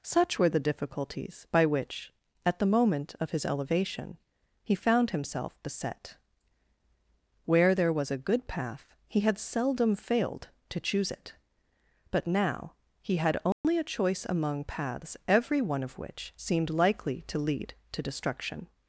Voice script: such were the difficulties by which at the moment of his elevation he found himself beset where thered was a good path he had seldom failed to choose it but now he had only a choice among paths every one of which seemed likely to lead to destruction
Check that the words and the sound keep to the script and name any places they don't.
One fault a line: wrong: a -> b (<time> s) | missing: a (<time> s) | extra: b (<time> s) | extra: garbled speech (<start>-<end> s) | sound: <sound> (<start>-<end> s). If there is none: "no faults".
wrong: thered -> there (7.7 s)
sound: dropout (13.5-13.6 s)